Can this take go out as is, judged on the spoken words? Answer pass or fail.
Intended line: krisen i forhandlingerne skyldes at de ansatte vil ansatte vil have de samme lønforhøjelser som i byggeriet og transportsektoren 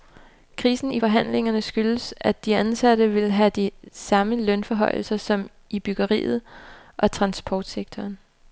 fail